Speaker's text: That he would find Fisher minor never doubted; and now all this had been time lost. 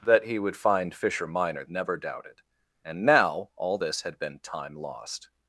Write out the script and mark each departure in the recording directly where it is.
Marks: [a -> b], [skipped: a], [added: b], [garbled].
That he would find Fisher minor never doubted; and now all this had been time lost.